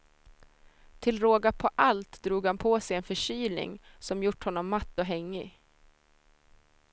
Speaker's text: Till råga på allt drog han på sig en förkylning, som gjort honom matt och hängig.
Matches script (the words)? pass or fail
pass